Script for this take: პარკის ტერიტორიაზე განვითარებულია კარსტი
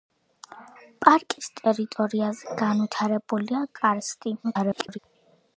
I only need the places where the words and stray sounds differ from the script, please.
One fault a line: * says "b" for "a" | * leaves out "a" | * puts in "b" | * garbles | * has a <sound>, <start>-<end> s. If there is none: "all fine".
* garbles